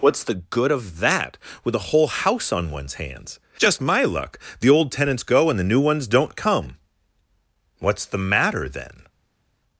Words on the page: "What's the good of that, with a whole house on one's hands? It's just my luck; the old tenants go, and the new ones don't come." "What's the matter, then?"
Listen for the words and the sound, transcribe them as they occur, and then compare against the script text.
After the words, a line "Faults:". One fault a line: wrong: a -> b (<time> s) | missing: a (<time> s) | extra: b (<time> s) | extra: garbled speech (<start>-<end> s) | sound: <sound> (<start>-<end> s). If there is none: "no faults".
"What's the good of that, with a whole house on one's hands? Just my luck; the old tenants go, and the new ones don't come." "What's the matter, then?"
Faults:
missing: It's (3.4 s)